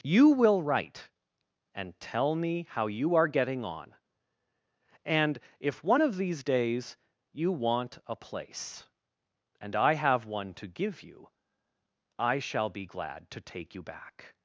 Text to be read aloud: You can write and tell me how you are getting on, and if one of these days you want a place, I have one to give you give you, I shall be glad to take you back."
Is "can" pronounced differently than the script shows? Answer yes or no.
yes